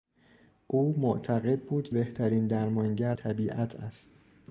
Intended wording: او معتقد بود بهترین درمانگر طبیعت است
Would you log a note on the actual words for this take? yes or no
no